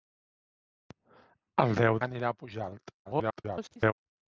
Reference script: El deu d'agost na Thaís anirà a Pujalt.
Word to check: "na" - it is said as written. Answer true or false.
false